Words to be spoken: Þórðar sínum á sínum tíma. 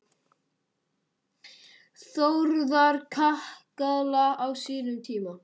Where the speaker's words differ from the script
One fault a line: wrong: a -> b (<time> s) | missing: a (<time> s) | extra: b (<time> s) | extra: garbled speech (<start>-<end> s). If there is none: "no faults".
wrong: sínum -> kakala (3.2 s)